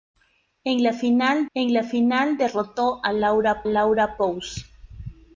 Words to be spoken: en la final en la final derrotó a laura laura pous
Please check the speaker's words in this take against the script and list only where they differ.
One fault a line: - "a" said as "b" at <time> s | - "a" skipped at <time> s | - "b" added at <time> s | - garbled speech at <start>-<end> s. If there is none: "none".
none